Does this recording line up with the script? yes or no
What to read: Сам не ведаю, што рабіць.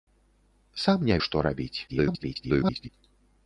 no